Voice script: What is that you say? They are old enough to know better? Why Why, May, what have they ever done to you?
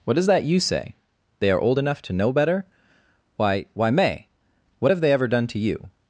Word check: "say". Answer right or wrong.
right